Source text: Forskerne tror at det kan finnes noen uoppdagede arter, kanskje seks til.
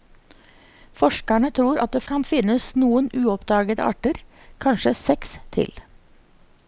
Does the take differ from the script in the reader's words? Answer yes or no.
no